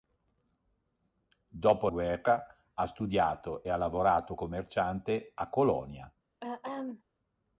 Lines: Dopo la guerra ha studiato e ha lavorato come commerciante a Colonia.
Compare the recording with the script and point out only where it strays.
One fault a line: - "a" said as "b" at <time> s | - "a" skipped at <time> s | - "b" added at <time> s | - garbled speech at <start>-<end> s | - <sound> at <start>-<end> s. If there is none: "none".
- "la" skipped at 1.9 s
- "come" skipped at 4.4 s
- throat clearing at 6.4-7.0 s